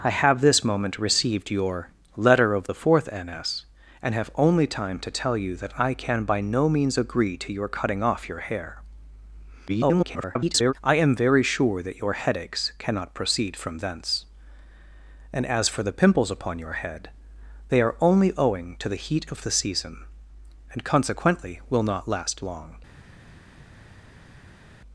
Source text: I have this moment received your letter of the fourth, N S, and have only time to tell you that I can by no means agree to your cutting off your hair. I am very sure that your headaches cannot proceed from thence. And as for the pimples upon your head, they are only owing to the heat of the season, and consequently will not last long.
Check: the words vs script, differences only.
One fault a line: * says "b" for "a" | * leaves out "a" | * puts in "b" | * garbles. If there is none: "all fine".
* garbles